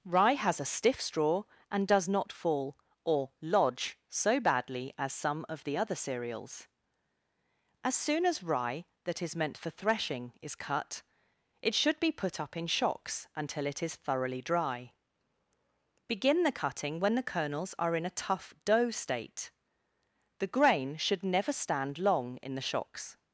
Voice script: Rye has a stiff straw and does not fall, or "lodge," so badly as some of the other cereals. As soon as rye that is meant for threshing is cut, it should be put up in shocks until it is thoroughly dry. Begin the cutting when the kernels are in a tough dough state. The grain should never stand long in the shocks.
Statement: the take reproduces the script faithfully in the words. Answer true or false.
true